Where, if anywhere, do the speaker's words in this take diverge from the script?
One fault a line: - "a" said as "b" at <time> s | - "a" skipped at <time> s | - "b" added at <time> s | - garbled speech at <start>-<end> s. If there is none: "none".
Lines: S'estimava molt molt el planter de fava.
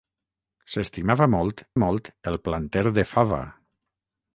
none